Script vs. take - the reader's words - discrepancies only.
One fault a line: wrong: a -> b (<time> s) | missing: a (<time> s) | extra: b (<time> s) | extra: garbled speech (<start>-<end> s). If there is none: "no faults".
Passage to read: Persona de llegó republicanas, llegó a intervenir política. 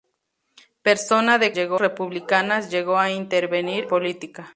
no faults